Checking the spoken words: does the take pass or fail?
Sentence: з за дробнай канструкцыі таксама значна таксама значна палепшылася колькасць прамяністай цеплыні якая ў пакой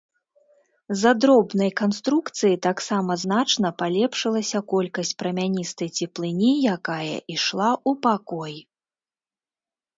fail